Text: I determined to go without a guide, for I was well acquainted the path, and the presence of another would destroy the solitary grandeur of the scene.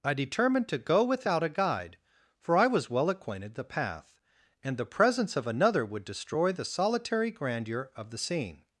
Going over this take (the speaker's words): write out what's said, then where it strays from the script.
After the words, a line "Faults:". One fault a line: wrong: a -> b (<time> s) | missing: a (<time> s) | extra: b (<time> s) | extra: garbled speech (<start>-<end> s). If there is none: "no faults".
I determined to go without a guide, for I was well acquainted the path, and the presence of another would destroy the solitary grandeur of the scene.
Faults:
no faults